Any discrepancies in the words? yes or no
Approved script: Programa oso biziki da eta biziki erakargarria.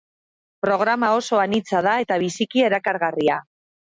yes